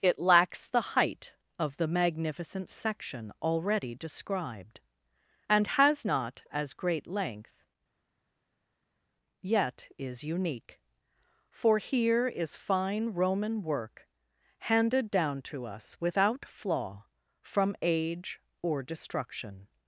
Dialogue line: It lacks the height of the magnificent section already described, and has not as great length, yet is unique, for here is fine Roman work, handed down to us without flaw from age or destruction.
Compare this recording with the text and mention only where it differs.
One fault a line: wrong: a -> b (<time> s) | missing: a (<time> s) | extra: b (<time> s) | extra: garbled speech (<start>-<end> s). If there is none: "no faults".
no faults